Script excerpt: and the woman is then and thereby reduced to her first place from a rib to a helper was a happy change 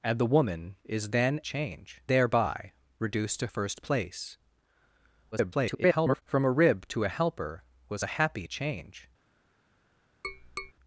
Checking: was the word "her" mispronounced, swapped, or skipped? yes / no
yes